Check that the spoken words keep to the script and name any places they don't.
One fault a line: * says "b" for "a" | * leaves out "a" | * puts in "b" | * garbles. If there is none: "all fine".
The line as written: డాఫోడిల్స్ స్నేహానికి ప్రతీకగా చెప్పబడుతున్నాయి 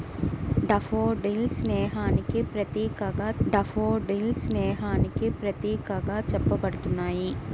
* puts in "డాఫోడిల్స్ స్నేహానికి ప్రతీకగా"